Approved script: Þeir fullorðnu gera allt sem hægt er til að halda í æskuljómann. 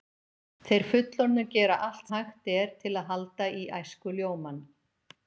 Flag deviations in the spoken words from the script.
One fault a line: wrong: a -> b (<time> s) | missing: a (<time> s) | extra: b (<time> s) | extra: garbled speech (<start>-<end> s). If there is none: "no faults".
missing: sem (2.1 s)